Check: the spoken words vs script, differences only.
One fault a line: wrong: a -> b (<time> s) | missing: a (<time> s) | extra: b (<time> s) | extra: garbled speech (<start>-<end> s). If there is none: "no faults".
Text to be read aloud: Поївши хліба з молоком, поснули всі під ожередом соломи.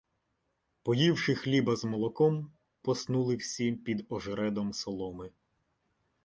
no faults